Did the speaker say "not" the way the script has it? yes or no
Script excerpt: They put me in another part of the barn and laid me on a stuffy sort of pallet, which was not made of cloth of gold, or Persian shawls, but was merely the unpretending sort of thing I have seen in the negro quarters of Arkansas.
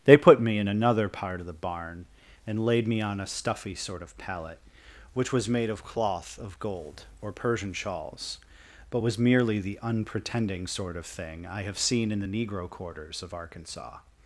no